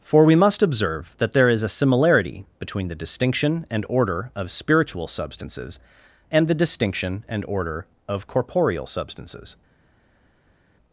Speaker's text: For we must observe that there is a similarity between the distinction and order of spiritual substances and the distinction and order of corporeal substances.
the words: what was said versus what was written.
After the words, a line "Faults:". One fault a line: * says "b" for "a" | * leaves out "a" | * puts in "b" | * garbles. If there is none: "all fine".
For we must observe that there is a similarity between the distinction and order of spiritual substances and the distinction and order of corporeal substances.
Faults:
all fine